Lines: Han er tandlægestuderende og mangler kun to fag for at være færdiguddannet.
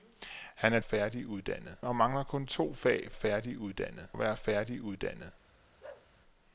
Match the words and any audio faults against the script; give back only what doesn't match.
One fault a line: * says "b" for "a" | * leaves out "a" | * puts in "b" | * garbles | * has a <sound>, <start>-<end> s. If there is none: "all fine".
* says "færdiguddannet" for "tandlægestuderende"
* says "færdiguddannet" for "for"
* has a bark, 5.8-6.1 s